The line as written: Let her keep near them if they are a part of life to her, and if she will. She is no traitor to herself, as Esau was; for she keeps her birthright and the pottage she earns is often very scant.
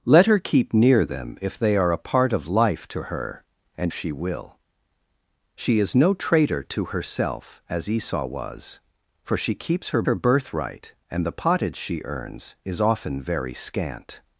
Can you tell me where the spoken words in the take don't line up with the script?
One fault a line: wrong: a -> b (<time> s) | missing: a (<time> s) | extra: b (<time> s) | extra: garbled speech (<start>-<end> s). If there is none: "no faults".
missing: if (3.9 s)
extra: her (10.0 s)